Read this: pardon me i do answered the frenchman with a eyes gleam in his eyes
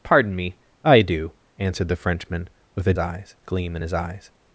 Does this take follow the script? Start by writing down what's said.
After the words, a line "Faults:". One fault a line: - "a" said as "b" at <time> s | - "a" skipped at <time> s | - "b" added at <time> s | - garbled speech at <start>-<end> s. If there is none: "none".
pardon me i do answered the frenchman with a eyes gleam in his eyes
Faults:
none